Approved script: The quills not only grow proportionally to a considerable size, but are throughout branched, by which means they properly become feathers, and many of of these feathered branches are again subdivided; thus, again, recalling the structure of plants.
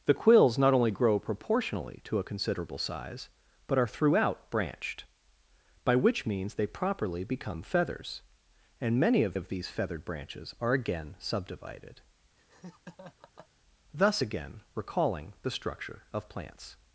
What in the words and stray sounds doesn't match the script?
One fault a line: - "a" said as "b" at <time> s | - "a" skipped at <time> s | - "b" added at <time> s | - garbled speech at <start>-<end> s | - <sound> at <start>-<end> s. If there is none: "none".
- laugh at 12.4-13.5 s